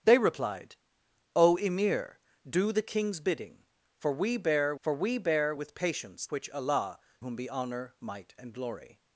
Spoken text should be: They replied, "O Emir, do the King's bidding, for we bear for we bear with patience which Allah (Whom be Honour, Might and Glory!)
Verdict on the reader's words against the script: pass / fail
pass